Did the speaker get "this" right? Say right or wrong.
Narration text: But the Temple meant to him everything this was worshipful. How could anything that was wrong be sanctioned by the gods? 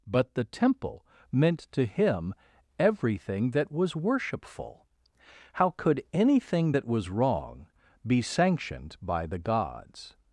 wrong